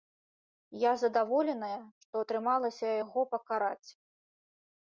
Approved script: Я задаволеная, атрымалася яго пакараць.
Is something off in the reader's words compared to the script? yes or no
yes